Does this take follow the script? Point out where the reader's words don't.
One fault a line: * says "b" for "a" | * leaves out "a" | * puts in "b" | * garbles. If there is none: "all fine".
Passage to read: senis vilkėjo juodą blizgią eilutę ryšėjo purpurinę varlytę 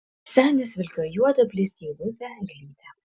* leaves out "ryšėjo purpurinę"